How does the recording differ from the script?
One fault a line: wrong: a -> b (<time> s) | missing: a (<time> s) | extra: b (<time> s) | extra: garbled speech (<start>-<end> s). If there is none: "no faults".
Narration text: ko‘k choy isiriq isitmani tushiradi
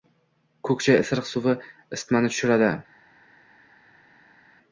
extra: suvi (1.3 s)